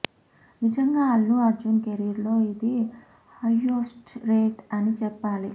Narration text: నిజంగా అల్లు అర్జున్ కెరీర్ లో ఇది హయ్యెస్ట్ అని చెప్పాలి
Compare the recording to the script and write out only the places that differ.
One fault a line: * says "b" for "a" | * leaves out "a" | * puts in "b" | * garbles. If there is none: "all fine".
* puts in "రేట్"